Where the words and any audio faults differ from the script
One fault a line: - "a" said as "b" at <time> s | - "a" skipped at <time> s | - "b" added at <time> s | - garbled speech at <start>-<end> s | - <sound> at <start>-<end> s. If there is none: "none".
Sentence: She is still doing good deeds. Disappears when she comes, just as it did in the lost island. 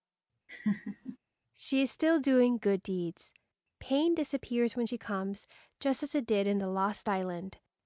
- laugh at 0.5-1.2 s
- "Pain" added at 3.8 s